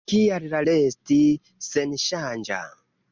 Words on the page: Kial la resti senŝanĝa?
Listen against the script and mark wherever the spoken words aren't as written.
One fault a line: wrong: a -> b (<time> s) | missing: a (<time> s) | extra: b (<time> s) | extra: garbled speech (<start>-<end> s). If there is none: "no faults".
no faults